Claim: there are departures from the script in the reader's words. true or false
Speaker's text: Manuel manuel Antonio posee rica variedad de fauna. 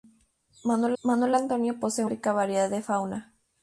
false